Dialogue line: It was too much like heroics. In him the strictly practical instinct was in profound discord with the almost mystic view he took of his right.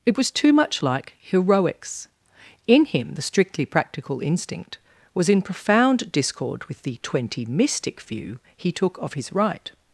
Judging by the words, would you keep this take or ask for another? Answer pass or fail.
fail